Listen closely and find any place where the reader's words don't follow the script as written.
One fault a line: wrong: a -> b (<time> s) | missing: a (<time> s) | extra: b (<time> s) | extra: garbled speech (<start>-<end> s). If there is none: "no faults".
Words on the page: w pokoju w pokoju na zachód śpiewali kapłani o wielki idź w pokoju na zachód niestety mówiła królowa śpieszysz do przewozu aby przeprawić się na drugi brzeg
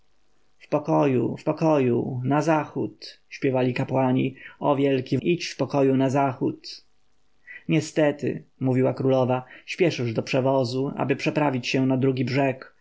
no faults